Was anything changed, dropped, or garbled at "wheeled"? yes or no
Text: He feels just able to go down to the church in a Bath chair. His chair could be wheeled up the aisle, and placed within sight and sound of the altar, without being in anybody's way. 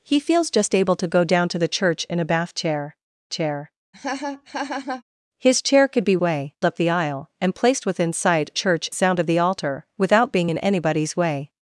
yes